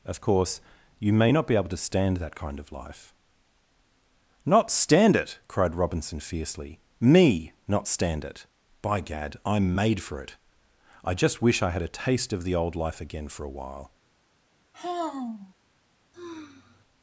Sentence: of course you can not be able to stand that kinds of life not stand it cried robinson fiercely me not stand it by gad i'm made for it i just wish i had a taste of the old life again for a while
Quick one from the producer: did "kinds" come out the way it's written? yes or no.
no